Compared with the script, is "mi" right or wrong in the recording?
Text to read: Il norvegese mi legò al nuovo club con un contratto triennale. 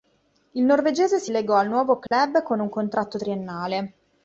wrong